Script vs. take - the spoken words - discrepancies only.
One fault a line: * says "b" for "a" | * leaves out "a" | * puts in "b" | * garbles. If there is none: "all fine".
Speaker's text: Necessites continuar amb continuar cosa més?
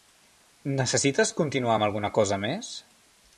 * says "alguna" for "continuar"